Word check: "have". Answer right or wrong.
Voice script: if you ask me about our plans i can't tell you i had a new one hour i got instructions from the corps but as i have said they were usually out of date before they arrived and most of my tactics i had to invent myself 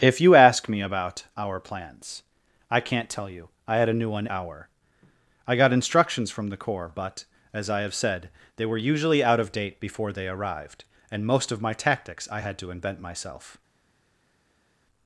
right